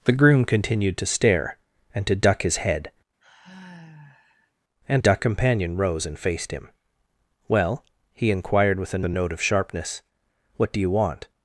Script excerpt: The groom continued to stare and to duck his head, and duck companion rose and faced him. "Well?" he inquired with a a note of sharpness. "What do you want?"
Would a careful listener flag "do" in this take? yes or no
no